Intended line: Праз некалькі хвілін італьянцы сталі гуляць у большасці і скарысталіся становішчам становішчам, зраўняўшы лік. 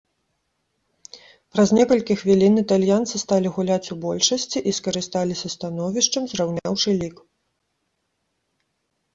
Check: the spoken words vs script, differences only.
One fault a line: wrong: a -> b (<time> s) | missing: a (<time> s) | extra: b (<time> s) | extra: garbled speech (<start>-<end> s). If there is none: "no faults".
missing: становішчам (6.2 s)